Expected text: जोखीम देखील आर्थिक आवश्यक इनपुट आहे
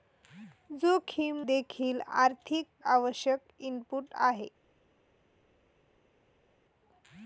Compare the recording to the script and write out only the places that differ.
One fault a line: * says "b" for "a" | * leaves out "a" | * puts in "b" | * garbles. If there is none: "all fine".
all fine